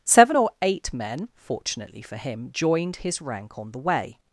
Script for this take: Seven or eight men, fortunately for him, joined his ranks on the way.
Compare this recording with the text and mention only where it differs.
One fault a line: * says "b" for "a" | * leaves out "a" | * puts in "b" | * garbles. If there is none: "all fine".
* says "rank" for "ranks"